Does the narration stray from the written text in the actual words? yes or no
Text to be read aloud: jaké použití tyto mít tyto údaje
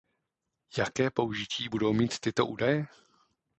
yes